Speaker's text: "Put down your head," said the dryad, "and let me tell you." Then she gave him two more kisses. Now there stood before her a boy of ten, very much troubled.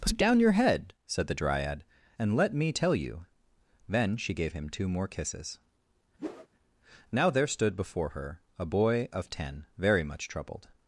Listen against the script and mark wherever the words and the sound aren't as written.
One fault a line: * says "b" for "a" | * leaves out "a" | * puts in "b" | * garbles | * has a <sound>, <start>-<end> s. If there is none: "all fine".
* has a whoosh, 6.2-6.5 s